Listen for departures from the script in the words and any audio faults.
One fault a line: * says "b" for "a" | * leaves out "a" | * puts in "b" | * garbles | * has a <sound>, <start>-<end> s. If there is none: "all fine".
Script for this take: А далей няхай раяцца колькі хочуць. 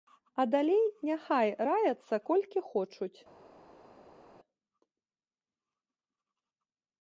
all fine